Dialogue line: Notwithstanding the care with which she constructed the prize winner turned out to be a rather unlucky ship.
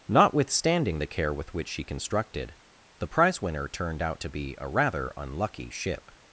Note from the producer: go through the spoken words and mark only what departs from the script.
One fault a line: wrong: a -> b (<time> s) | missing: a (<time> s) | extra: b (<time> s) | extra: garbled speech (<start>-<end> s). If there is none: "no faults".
no faults